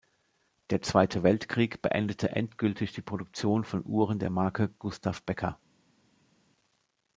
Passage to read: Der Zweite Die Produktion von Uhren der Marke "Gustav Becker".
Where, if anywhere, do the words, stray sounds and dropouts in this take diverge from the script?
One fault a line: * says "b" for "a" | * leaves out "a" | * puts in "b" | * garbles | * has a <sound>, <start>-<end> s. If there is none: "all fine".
* puts in "Weltkrieg beendete endgültig"